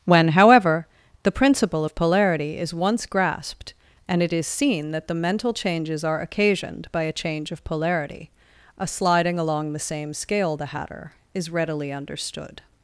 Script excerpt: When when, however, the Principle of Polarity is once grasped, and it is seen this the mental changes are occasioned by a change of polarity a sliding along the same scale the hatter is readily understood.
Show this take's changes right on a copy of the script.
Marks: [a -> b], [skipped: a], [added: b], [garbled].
When [skipped: when,] however, the Principle of Polarity is once grasped, and it is seen [this -> that] the mental changes are occasioned by a change of polarity a sliding along the same scale the hatter is readily understood.